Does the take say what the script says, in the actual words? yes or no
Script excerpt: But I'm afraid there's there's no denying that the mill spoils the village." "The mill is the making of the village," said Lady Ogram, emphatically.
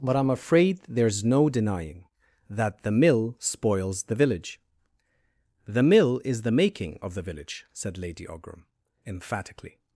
no